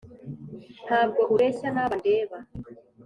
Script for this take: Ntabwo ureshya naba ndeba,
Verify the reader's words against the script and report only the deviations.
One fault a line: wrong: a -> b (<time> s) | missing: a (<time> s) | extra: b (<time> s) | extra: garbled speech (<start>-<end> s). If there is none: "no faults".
no faults